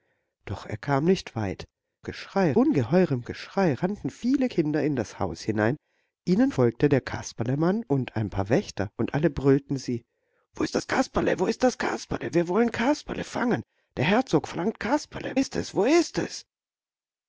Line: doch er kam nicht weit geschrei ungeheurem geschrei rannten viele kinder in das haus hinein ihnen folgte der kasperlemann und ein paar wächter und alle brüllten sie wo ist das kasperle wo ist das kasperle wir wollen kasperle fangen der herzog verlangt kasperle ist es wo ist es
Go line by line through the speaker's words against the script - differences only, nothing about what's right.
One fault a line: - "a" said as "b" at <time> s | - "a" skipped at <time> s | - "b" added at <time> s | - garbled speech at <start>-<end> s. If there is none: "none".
none